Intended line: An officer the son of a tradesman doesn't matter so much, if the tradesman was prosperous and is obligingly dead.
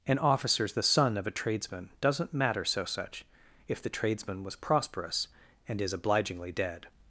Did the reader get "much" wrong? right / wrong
wrong